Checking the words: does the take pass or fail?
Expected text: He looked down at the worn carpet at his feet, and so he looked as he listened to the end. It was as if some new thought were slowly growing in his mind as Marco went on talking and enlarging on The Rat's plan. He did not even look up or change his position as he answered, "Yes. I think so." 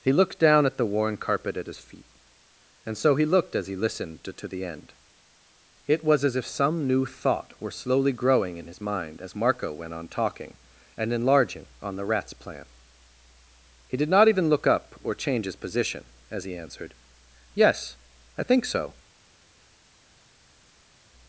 fail